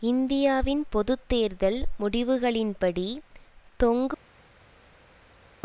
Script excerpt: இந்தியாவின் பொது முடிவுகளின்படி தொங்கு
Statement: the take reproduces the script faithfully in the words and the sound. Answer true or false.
false